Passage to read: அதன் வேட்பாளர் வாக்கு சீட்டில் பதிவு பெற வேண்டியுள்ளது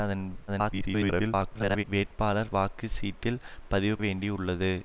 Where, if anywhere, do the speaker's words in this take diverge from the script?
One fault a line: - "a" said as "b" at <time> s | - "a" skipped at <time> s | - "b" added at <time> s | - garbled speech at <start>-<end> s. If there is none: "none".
- garbled speech at 0.5-1.8 s
- "பெற" skipped at 4.0 s